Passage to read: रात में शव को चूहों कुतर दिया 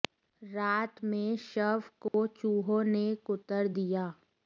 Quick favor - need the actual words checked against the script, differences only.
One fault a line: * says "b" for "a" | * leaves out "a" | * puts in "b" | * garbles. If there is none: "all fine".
* puts in "ने"